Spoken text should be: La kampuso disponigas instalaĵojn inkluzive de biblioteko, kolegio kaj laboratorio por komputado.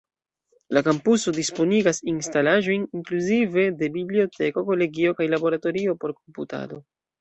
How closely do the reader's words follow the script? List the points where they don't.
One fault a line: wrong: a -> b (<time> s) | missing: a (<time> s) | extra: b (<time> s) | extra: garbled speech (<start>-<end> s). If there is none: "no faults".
no faults